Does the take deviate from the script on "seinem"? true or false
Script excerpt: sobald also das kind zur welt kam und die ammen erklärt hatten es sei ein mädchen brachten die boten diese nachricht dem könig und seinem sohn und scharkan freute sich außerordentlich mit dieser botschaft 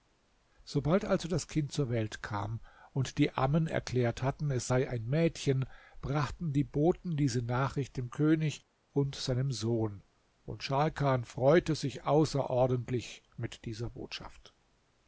false